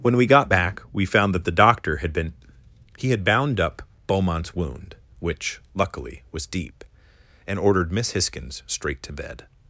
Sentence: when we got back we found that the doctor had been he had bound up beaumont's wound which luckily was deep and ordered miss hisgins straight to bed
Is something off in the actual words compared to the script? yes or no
no